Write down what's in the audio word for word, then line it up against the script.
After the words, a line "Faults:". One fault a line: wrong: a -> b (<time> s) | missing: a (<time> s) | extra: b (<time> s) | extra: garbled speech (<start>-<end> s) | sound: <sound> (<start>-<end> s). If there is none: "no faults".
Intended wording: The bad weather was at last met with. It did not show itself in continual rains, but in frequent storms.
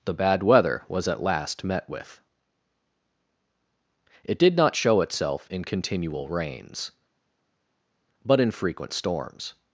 The bad weather was at last met with. It did not show itself in continual rains, but in frequent storms.
Faults:
no faults